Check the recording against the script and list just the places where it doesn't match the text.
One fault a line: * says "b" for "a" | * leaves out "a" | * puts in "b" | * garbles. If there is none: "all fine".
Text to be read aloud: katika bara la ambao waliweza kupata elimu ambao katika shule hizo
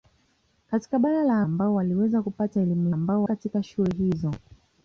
all fine